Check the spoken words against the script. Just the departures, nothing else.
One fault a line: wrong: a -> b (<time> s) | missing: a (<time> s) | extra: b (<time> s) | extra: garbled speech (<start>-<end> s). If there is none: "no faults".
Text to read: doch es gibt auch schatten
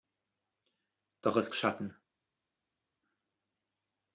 missing: gibt auch (1.5 s)